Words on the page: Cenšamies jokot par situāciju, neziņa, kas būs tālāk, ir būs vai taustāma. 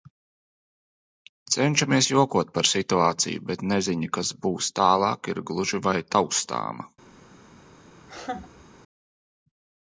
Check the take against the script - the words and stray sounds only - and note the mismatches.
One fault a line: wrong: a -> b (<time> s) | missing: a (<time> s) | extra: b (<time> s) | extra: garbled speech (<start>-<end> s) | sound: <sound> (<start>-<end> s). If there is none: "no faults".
extra: bet (3.5 s)
wrong: būs -> gluži (5.5 s)
sound: laugh (8.0-8.7 s)